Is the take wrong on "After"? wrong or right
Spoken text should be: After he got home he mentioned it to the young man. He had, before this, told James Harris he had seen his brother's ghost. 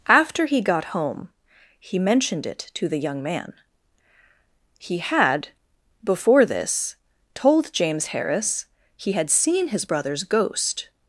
right